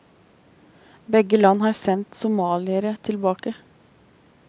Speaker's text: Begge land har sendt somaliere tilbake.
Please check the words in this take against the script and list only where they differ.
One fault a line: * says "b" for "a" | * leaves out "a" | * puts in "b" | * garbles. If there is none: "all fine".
all fine